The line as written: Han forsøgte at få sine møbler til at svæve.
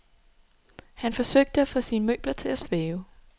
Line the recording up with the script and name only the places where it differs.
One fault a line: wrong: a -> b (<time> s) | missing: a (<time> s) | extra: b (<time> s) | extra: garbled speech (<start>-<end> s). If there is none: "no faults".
no faults